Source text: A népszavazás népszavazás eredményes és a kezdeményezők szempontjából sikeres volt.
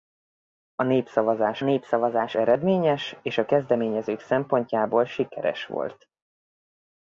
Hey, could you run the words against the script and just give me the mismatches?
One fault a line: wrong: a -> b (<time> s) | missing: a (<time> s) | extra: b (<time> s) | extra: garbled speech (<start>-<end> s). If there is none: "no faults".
no faults